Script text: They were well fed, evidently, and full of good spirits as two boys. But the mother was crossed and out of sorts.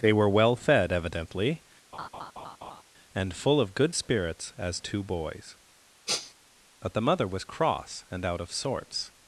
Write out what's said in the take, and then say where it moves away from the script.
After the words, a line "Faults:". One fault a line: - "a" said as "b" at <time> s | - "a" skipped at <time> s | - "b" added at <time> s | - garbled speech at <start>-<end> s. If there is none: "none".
They were well fed, evidently, and full of good spirits as two boys. But the mother was cross and out of sorts.
Faults:
- "crossed" said as "cross" at 7.4 s